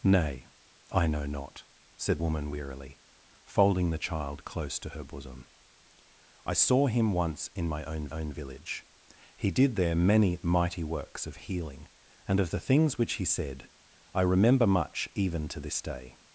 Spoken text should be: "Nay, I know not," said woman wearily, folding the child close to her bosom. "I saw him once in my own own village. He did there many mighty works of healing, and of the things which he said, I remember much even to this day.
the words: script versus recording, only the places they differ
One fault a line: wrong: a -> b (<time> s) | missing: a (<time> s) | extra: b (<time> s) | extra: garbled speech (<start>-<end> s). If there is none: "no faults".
no faults